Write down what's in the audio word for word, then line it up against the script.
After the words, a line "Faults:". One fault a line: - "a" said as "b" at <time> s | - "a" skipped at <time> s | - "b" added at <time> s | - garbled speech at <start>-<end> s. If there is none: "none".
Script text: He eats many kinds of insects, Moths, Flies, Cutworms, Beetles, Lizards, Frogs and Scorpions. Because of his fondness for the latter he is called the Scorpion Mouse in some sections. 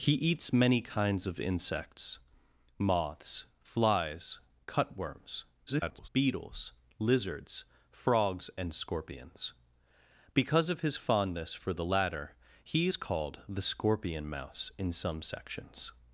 He eats many kinds of insects, Moths, Flies, Cutworms, [garbled] Beetles, Lizards, Frogs and Scorpions. Because of his fondness for the latter he is called the Scorpion Mouse in some sections.
Faults:
- garbled speech at 5.7-6.1 s